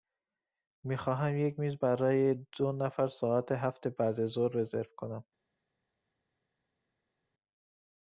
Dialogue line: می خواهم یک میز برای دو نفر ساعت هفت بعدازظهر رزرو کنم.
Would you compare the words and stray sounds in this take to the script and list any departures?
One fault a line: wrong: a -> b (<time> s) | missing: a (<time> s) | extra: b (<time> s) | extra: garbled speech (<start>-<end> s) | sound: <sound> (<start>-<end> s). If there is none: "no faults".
no faults